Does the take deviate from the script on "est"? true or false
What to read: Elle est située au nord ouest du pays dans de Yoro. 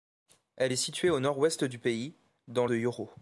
false